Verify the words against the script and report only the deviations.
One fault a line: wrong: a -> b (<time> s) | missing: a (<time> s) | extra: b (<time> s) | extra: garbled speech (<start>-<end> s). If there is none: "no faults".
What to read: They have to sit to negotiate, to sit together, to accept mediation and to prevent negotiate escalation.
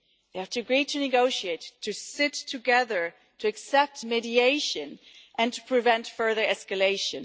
wrong: sit -> agree (0.6 s)
wrong: negotiate -> further (6.1 s)